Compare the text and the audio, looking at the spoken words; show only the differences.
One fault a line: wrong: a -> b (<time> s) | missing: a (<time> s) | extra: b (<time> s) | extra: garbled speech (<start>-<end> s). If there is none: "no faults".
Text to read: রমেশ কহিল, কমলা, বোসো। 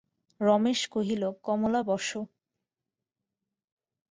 no faults